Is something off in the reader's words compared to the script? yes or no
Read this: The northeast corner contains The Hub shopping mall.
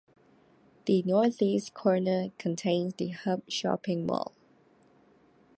no